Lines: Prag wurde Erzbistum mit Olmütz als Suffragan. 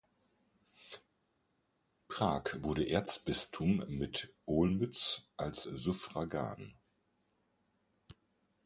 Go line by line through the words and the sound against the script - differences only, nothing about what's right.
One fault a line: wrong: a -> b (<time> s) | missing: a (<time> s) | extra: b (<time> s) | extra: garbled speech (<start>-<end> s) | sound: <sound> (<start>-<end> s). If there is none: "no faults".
no faults